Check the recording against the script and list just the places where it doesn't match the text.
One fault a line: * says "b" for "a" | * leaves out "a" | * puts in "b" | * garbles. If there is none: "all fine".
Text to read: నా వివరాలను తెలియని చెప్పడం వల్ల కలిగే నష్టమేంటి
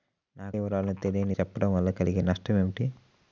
all fine